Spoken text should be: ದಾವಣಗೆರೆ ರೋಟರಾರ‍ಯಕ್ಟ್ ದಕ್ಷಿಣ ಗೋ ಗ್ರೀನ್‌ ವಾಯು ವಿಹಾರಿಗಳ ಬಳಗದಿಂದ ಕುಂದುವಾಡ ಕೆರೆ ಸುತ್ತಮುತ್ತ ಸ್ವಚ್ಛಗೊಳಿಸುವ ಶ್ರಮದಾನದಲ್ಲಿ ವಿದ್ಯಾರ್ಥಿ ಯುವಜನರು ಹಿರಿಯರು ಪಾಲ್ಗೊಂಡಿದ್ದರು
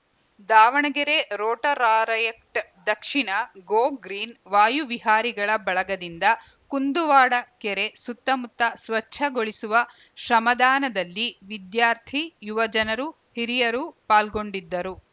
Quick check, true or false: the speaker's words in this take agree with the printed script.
true